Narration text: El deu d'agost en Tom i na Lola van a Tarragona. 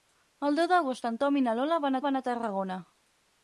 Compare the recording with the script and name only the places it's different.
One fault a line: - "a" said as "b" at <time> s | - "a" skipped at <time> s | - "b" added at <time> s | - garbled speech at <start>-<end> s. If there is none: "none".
- "van" added at 2.1 s